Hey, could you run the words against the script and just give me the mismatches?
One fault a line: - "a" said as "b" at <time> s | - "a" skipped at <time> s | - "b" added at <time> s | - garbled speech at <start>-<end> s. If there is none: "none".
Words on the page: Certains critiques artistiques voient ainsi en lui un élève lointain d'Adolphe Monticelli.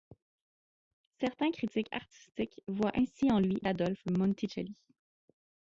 - "un élève lointain" skipped at 3.6 s